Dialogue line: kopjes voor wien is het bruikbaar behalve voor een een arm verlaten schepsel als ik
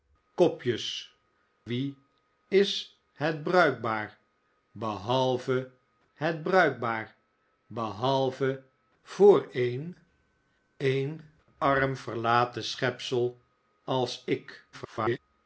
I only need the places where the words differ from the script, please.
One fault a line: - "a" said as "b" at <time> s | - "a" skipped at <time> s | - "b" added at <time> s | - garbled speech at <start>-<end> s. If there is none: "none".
- "voor" skipped at 1.1 s
- "het bruikbaar behalve" added at 6.1 s
- garbled speech at 14.7-15.2 s